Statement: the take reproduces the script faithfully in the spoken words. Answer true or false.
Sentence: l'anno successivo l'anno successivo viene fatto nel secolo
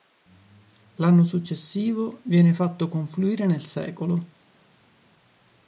false